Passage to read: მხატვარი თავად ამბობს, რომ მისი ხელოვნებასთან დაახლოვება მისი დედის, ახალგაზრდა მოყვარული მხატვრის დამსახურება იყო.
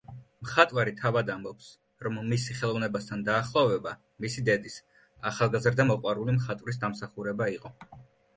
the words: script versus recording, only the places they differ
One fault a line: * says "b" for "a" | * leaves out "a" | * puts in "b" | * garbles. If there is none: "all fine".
all fine